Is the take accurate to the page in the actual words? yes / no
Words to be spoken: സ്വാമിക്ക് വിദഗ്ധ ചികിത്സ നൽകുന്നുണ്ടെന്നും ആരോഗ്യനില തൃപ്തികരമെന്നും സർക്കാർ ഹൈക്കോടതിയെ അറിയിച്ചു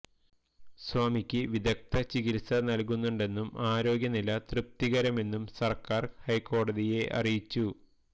yes